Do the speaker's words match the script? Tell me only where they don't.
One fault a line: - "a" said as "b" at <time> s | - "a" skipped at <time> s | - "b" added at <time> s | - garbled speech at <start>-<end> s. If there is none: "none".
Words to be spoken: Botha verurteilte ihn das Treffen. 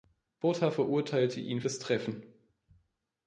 none